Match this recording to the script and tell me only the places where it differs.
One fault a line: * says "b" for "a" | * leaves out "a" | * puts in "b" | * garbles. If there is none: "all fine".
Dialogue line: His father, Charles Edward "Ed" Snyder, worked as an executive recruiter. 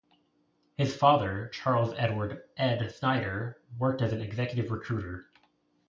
all fine